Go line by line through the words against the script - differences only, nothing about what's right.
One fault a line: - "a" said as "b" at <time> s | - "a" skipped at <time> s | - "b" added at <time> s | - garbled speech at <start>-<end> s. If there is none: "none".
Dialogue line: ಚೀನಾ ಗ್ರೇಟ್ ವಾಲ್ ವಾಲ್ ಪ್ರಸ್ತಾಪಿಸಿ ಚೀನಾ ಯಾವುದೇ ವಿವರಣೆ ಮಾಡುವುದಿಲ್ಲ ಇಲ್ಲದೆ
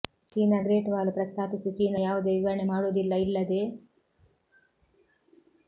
- "ವಾಲ್" skipped at 1.1 s